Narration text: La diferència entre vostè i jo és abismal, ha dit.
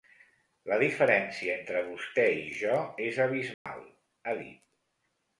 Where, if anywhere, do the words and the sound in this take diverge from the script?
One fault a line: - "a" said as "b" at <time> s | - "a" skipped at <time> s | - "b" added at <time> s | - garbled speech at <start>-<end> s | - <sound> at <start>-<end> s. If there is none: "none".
- dropout at 3.5-3.7 s